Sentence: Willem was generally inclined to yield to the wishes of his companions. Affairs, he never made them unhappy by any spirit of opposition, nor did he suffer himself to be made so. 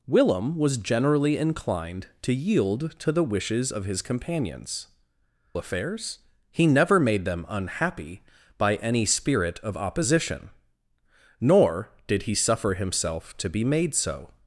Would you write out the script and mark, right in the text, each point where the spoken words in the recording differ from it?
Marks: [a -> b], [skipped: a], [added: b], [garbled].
Willem was generally inclined to yield to the wishes of his companions. Affairs, he never made them unhappy by any spirit of opposition, nor did he suffer himself to be made so.